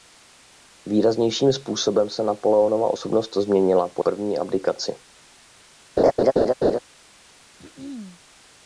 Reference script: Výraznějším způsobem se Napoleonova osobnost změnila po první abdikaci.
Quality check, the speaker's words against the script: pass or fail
pass